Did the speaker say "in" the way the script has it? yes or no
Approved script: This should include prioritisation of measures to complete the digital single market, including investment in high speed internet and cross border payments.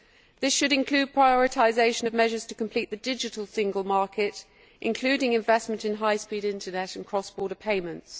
yes